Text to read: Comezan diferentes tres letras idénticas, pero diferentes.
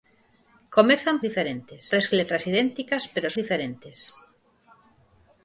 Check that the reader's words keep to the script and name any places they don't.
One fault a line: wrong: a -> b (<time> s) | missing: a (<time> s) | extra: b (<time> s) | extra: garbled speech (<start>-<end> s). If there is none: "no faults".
no faults